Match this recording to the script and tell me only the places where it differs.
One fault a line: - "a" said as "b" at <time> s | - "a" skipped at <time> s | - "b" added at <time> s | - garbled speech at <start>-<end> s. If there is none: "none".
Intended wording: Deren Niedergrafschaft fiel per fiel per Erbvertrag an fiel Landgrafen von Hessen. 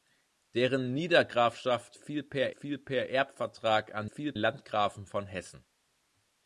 none